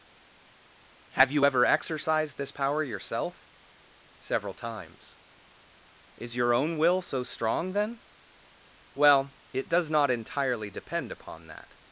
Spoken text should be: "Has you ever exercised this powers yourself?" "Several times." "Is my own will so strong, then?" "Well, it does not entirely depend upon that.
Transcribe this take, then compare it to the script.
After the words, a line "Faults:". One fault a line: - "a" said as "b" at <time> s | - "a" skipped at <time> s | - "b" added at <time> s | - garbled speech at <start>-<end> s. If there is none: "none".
"Have you ever exercised this power yourself?" "Several times." "Is your own will so strong, then?" "Well, it does not entirely depend upon that.
Faults:
- "Has" said as "Have" at 1.2 s
- "powers" said as "power" at 2.5 s
- "my" said as "your" at 6.4 s